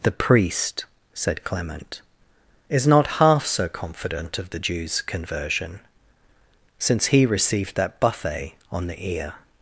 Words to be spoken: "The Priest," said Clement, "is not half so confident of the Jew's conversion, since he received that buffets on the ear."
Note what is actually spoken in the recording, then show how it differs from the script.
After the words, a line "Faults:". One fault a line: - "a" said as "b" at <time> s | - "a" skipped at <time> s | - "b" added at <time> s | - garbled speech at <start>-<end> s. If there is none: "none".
"The Priest," said Clement, "is not half so confident of the Jew's conversion, since he received that buffet on the ear."
Faults:
- "buffets" said as "buffet" at 8.0 s